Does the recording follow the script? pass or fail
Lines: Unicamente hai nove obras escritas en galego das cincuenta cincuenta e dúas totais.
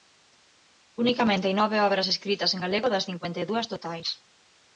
fail